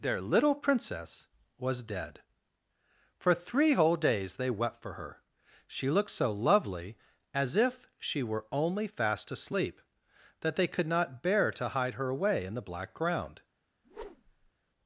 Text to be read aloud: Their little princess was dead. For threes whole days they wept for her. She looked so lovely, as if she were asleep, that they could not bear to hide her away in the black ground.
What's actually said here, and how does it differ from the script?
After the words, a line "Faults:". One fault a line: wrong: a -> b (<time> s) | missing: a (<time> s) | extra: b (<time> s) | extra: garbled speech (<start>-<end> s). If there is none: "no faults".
Their little princess was dead. For three whole days they wept for her. She looked so lovely, as if she were only fast asleep, that they could not bear to hide her away in the black ground.
Faults:
wrong: threes -> three (3.4 s)
extra: only fast (8.5 s)